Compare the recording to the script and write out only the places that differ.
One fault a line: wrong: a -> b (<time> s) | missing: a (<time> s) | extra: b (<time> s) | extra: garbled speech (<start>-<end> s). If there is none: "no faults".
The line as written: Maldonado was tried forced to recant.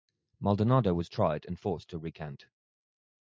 extra: and (1.4 s)